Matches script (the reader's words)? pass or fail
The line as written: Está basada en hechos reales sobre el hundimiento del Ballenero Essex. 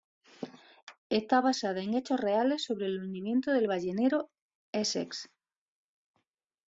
pass